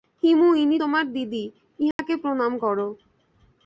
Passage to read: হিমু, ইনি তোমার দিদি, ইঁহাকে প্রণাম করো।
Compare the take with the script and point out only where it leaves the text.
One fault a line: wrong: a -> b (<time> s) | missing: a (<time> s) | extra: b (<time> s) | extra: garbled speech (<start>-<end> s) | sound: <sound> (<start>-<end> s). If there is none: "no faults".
sound: dropout (1.9-2.0 s)